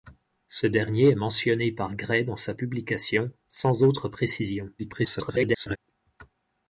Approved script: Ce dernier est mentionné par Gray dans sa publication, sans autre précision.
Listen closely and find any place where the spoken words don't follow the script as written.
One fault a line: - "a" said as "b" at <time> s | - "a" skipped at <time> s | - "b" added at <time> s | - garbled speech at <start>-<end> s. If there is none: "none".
- garbled speech at 4.8-5.8 s